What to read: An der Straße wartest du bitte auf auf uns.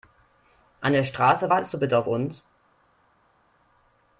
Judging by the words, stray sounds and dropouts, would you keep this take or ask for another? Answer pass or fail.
fail